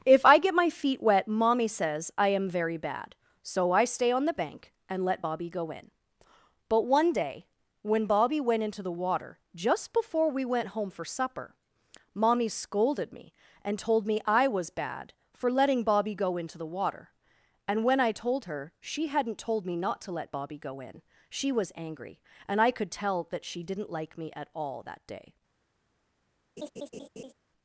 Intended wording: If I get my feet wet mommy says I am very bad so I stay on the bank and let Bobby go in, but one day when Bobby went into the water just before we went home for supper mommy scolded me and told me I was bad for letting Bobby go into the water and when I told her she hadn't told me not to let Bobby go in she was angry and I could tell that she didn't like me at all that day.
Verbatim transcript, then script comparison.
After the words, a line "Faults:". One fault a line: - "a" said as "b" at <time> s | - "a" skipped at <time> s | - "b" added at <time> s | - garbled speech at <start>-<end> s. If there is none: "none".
If I get my feet wet mommy says I am very bad so I stay on the bank and let Bobby go in, but one day when Bobby went into the water just before we went home for supper mommy scolded me and told me I was bad for letting Bobby go into the water and when I told her she hadn't told me not to let Bobby go in she was angry and I could tell that she didn't like me at all that day.
Faults:
none